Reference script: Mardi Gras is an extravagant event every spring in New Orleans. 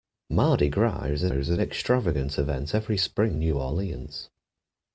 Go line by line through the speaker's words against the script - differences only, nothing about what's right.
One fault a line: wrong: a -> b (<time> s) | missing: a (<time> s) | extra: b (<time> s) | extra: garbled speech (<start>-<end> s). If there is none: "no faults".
extra: is an (1.3 s)
missing: in (3.4 s)